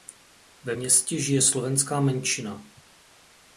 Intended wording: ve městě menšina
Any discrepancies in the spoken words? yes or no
yes